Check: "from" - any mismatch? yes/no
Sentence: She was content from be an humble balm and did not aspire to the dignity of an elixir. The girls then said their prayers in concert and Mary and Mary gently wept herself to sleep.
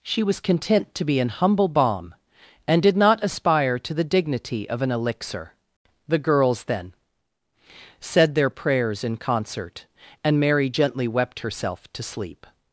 yes